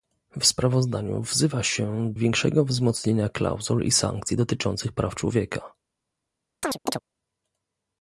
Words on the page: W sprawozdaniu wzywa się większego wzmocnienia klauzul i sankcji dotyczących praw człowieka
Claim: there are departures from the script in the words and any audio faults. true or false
true